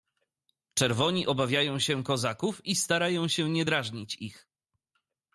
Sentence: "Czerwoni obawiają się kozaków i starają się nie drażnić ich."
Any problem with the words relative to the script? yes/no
no